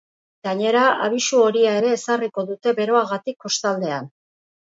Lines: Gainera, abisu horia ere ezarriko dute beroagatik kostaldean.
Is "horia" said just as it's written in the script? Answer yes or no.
yes